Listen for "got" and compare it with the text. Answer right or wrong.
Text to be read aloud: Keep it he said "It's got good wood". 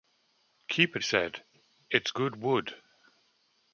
wrong